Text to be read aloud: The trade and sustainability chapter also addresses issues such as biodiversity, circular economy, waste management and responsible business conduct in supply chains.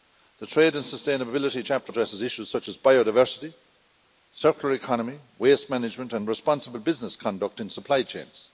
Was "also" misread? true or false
true